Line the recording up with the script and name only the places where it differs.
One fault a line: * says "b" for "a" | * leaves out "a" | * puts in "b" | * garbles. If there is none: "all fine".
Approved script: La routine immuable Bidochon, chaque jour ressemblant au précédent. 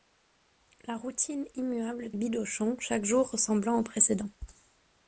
all fine